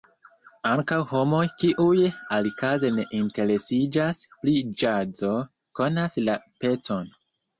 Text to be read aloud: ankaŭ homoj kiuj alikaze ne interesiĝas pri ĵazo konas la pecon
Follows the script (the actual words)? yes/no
yes